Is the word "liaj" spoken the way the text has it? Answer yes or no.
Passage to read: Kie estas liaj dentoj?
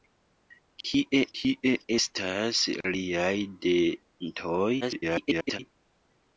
yes